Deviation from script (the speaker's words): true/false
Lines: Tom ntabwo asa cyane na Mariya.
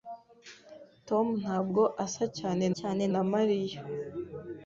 true